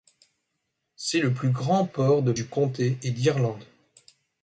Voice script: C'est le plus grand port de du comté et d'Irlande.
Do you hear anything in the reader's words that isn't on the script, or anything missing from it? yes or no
no